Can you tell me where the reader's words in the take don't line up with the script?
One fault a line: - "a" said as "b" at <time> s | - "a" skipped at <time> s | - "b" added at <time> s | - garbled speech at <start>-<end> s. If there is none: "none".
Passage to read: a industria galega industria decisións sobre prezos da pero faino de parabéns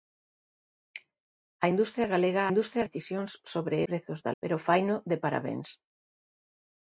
none